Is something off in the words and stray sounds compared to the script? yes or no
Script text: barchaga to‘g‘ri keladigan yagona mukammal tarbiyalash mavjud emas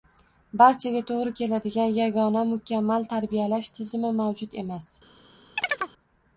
yes